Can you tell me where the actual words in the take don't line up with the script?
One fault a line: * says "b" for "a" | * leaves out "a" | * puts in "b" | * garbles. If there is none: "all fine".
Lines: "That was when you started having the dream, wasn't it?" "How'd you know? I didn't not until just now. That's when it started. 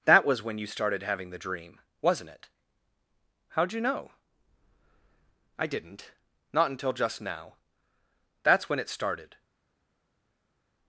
all fine